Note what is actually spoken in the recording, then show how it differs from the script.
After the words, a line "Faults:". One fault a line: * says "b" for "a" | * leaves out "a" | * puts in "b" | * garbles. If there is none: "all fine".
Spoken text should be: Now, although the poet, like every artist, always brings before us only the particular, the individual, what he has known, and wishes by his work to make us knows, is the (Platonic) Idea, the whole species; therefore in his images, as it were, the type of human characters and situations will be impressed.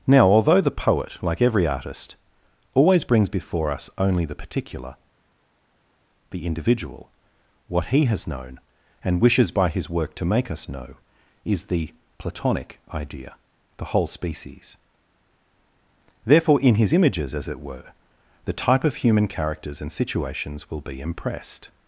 Now, although the poet, like every artist, always brings before us only the particular, the individual, what he has known, and wishes by his work to make us know, is the (Platonic) Idea, the whole species; therefore in his images, as it were, the type of human characters and situations will be impressed.
Faults:
* says "know" for "knows"